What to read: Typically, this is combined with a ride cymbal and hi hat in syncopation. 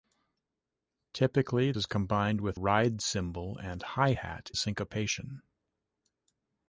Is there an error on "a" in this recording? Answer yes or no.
yes